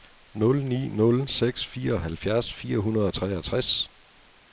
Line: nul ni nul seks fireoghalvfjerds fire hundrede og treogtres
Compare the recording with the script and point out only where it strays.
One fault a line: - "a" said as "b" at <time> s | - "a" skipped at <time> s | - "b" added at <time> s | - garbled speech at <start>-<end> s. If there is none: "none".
none